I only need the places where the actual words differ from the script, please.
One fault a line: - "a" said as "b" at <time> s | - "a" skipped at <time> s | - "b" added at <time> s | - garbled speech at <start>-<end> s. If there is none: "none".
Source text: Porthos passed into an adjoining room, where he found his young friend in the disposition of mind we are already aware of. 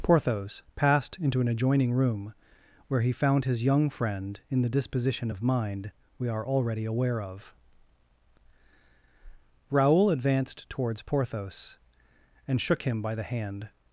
- "Raoul advanced towards Porthos and shook him by the hand" added at 9.7 s